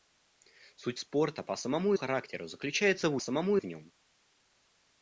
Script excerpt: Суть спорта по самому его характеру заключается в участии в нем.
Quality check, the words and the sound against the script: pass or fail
fail